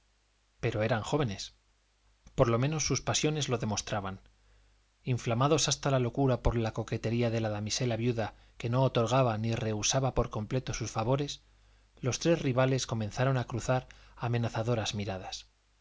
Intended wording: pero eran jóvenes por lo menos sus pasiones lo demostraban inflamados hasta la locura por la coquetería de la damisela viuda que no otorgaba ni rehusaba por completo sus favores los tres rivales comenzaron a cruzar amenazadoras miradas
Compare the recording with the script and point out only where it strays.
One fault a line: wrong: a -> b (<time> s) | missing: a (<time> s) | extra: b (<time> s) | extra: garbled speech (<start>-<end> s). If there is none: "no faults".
no faults